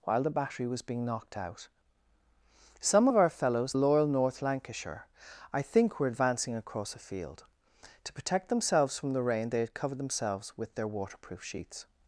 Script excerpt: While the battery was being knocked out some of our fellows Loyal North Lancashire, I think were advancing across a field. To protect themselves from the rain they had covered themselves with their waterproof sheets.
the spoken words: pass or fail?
pass